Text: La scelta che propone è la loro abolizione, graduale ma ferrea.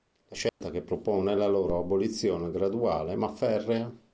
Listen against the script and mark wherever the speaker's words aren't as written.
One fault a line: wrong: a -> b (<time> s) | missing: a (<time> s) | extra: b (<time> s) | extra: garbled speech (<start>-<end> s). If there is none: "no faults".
no faults